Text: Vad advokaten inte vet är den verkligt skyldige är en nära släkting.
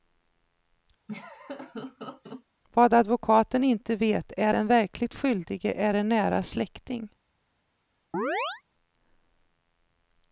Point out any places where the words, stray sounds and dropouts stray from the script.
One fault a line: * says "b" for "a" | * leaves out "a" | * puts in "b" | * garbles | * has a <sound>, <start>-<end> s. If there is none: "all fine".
* has a laugh, 1.1-2.4 s
* has a chirp, 8.1-8.6 s